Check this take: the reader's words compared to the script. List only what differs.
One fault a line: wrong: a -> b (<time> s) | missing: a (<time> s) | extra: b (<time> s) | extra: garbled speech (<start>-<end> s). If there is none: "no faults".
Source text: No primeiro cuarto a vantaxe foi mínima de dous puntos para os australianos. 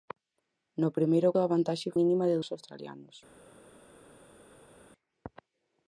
missing: cuarto (1.3 s)
missing: foi (1.9 s)
missing: dous puntos para (2.4 s)